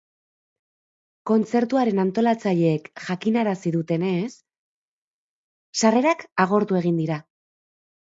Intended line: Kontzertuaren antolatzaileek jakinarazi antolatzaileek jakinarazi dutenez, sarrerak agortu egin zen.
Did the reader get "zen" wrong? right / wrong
wrong